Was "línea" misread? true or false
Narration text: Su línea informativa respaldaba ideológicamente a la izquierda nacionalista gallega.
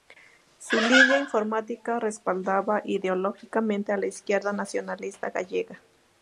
false